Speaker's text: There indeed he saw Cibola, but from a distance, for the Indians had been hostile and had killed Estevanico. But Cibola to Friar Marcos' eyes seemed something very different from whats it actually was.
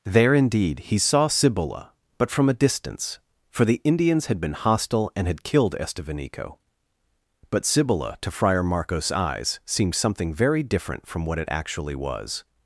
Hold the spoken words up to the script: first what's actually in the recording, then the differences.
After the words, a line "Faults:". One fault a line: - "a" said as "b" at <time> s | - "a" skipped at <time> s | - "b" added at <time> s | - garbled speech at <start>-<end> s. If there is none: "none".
There indeed he saw Cibola, but from a distance, for the Indians had been hostile and had killed Estevanico. But Cibola to Friar Marcos' eyes seemed something very different from what it actually was.
Faults:
- "whats" said as "what" at 11.2 s